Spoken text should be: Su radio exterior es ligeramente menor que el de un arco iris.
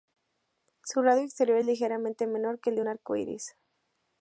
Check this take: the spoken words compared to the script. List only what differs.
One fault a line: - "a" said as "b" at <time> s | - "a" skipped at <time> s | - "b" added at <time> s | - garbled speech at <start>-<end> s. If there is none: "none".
none